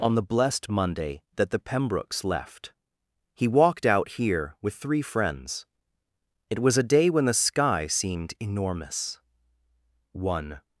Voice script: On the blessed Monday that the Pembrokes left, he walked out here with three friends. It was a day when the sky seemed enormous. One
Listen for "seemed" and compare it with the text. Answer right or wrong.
right